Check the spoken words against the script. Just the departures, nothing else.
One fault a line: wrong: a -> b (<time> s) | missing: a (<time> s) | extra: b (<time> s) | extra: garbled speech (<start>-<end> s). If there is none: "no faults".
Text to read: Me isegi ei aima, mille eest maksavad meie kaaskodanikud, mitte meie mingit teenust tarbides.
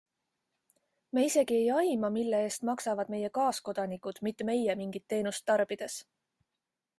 no faults